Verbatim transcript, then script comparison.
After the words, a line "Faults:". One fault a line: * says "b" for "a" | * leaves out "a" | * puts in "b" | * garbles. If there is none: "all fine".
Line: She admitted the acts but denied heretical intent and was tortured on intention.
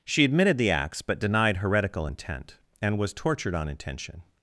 She admitted the acts but denied heretical intent and was tortured on intention.
Faults:
all fine